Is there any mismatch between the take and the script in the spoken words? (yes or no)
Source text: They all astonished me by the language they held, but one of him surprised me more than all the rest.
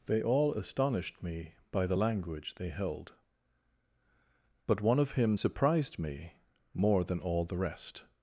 no